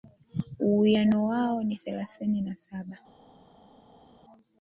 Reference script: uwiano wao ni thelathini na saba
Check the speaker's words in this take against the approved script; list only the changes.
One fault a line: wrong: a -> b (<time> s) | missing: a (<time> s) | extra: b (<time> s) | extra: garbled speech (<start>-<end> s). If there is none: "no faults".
no faults